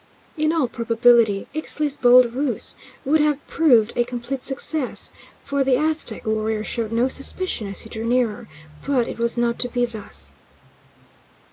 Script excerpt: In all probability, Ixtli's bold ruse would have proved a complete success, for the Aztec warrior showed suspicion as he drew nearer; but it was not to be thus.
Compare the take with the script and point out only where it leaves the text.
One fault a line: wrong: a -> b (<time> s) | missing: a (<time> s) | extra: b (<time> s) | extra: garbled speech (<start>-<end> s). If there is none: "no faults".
extra: no (6.9 s)